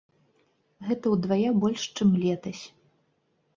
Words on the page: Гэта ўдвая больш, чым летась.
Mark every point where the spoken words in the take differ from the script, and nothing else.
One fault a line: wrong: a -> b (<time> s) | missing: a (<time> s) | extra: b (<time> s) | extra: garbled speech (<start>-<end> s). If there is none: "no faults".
no faults